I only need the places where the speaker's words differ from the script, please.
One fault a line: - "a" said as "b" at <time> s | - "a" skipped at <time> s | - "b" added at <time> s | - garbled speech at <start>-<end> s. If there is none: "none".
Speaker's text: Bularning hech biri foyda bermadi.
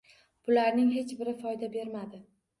none